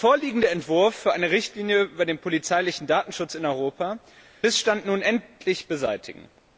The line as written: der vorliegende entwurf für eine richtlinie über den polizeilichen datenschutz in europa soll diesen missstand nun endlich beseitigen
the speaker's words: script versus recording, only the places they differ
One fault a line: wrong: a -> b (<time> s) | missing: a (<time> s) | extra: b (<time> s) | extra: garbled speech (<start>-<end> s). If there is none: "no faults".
missing: soll diesen (4.0 s)